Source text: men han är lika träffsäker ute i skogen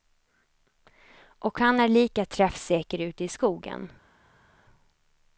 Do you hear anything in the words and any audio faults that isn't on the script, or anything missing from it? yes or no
yes